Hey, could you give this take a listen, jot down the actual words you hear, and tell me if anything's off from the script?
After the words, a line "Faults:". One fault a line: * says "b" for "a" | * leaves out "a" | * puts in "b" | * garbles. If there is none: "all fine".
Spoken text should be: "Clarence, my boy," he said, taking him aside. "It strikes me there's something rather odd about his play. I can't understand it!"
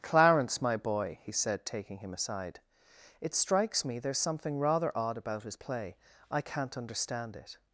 "Clarence, my boy," he said, taking him aside. "It strikes me there's something rather odd about his play. I can't understand it!"
Faults:
all fine